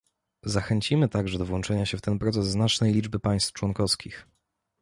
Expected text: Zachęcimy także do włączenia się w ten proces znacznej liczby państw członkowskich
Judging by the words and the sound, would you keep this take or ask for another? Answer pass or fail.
pass